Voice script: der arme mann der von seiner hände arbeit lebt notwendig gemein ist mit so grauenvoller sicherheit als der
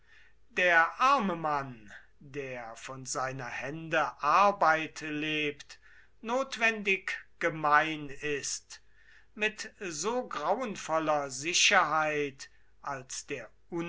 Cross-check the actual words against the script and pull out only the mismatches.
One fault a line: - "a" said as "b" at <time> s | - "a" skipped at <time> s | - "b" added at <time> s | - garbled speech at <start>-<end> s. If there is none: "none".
none